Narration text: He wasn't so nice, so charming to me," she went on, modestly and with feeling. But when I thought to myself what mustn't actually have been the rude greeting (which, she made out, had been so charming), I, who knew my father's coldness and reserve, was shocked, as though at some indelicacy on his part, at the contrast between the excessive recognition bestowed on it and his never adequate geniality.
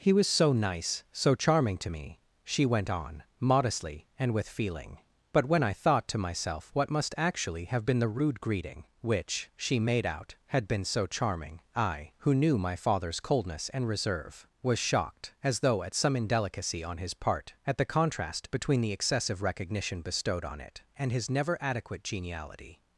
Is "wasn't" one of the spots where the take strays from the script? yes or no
yes